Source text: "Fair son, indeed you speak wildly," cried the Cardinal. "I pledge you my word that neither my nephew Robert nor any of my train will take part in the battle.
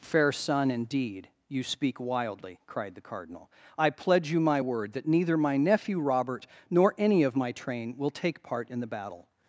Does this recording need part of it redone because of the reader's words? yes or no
no